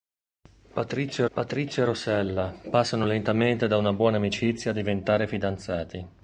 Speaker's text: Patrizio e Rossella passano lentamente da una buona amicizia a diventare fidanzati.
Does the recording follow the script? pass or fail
fail